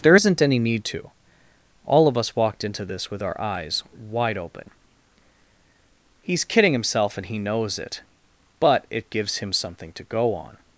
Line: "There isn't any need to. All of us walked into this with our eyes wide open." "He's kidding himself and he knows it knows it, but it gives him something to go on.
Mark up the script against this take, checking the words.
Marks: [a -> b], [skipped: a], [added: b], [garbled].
"There isn't any need to. All of us walked into this with our eyes wide open." "He's kidding himself and he knows it [skipped: knows it,] but it gives him something to go on.